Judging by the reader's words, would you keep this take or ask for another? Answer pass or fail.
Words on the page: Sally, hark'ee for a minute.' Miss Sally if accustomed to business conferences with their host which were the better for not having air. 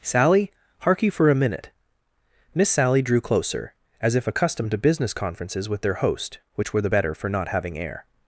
fail